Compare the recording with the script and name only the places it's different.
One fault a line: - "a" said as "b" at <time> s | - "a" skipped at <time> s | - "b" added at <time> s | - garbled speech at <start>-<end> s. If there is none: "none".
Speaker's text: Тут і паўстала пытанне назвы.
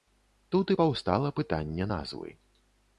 none